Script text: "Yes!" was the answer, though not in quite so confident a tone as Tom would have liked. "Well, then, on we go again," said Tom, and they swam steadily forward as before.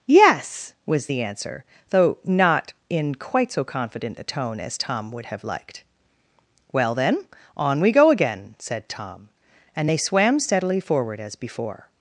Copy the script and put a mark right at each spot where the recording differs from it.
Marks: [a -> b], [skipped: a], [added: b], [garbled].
"Yes!" was the answer, though not in quite so confident a tone as Tom would have liked. "Well, then, on we go again," said Tom, and they swam steadily forward as before.